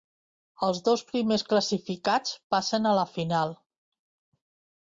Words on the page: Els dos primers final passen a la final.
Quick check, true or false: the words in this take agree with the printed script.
false